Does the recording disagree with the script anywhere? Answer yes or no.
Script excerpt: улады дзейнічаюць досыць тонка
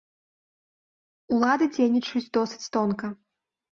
no